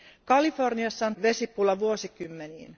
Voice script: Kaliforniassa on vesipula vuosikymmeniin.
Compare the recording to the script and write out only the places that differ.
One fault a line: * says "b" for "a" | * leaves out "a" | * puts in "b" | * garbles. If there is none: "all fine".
all fine